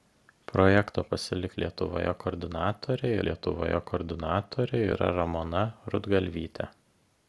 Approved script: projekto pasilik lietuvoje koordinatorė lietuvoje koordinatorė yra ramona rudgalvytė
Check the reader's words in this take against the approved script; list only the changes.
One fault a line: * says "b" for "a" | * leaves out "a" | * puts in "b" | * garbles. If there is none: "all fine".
all fine